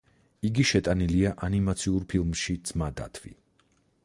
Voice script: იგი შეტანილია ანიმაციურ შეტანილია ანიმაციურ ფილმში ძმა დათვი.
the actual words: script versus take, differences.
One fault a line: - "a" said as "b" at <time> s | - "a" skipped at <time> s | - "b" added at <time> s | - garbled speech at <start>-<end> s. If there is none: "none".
- "შეტანილია ანიმაციურ" skipped at 2.1 s